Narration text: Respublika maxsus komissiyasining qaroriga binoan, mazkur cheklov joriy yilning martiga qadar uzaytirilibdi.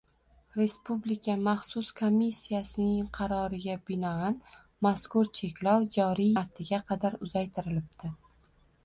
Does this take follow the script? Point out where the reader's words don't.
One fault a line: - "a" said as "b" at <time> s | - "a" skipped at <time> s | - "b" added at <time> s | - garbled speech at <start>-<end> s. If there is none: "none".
- "yilning" skipped at 6.3 s